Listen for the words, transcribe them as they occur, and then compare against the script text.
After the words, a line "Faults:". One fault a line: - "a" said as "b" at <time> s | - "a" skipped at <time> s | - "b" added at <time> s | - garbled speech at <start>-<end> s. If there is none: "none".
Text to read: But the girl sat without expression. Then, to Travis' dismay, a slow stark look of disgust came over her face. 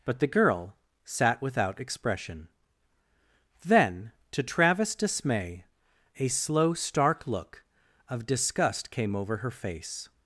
But the girl sat without expression. Then, to Travis' dismay, a slow stark look of disgust came over her face.
Faults:
none